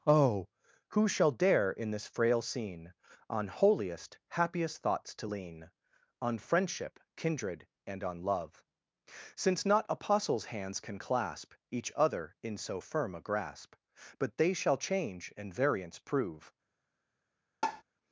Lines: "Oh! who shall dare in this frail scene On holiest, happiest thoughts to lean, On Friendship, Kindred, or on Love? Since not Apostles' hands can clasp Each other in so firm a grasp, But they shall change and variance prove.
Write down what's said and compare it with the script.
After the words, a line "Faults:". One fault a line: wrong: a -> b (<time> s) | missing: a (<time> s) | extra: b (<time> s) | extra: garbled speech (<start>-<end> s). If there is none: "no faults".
"Oh! who shall dare in this frail scene On holiest, happiest thoughts to lean, On Friendship, Kindred, and on Love? Since not Apostles' hands can clasp Each other in so firm a grasp, But they shall change and variance prove.
Faults:
wrong: or -> and (7.8 s)